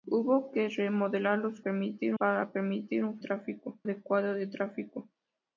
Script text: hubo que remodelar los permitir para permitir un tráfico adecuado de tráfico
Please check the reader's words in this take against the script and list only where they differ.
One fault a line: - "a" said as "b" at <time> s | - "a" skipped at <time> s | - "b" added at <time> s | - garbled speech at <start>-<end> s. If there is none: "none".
none